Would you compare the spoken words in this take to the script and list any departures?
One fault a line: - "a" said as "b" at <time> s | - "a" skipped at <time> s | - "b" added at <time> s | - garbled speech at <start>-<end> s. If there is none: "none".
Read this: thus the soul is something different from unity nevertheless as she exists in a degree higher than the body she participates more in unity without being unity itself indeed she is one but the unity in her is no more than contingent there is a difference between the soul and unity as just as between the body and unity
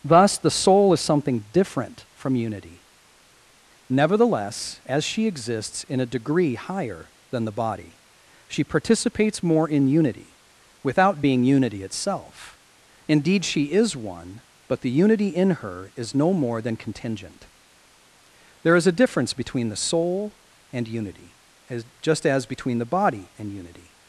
none